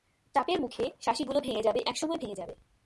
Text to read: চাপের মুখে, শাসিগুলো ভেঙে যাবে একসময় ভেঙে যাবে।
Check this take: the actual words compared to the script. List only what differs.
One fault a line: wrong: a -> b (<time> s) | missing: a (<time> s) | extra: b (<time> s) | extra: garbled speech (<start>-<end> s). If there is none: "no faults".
no faults